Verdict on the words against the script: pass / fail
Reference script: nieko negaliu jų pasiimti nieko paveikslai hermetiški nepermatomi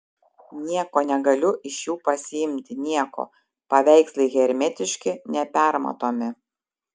fail